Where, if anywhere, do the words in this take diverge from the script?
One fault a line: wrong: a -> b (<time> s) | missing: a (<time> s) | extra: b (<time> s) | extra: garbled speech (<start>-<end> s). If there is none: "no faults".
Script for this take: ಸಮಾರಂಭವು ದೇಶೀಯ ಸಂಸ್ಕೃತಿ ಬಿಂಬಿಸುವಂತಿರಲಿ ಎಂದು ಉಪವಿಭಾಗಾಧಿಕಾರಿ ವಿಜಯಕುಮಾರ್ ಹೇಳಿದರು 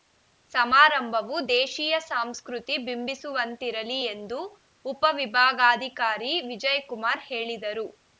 no faults